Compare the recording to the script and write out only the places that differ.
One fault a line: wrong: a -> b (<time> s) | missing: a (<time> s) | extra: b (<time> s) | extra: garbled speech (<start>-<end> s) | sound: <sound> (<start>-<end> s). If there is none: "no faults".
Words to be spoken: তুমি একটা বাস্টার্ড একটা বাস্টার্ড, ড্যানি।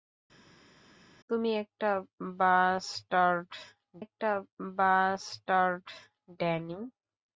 no faults